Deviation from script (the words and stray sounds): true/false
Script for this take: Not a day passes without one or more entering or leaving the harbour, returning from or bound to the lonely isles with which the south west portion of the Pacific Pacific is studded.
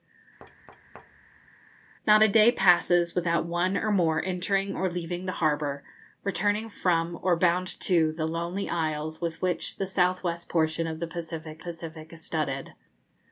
true